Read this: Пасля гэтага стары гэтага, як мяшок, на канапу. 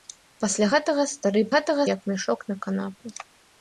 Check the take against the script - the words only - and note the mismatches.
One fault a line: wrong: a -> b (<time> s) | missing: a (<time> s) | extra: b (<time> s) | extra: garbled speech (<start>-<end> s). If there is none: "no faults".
no faults